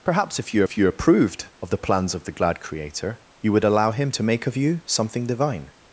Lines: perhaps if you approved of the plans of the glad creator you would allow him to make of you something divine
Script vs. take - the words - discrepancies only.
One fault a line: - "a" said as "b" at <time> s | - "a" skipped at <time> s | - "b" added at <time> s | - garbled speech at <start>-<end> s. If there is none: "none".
- "if you" added at 0.6 s